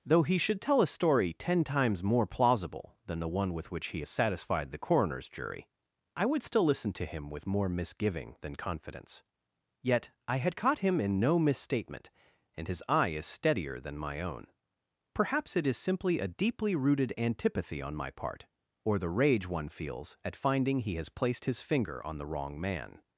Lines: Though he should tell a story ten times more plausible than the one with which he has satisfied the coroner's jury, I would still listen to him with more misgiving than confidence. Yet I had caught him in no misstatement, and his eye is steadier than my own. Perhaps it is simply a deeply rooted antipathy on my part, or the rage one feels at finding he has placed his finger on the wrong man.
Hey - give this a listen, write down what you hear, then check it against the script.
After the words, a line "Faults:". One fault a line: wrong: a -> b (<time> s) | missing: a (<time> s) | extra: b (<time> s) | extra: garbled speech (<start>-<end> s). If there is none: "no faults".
Though he should tell a story ten times more plausible than the one with which he has satisfied the coroner's jury, I would still listen to him with more misgiving than confidence. Yet I had caught him in no misstatement, and his eye is steadier than my own. Perhaps it is simply a deeply rooted antipathy on my part, or the rage one feels at finding he has placed his finger on the wrong man.
Faults:
no faults